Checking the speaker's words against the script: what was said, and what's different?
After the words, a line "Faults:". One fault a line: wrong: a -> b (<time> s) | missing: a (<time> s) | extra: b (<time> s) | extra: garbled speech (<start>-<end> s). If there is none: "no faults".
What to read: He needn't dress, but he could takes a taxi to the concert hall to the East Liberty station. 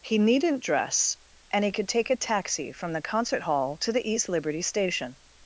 He needn't dress, and he could take a taxi from the concert hall to the East Liberty station.
Faults:
wrong: but -> and (1.5 s)
wrong: takes -> take (1.9 s)
wrong: to -> from (2.7 s)